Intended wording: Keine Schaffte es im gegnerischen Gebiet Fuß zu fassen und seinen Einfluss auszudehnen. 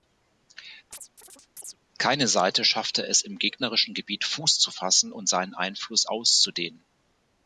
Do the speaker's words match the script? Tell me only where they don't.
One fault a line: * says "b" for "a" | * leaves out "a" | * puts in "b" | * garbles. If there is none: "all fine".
* puts in "Seite"